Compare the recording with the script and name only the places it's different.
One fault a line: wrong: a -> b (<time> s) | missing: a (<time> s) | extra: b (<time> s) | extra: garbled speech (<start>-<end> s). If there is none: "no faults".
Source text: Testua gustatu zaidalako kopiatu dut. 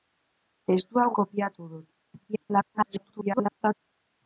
missing: gustatu zaidalako (1.0 s)
extra: garbled speech (2.3-3.7 s)